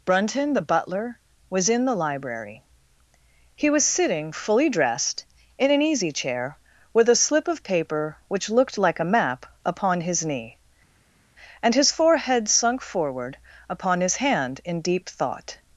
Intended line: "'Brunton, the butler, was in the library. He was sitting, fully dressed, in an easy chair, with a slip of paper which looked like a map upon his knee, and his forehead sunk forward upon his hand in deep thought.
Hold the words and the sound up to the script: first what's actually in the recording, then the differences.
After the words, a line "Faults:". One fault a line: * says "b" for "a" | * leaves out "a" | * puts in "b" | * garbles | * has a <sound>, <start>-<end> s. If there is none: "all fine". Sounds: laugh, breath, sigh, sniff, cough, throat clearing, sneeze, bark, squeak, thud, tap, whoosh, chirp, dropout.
"'Brunton, the butler, was in the library. He was sitting, fully dressed, in an easy chair, with a slip of paper which looked like a map upon his knee, and his forehead sunk forward upon his hand in deep thought.
Faults:
all fine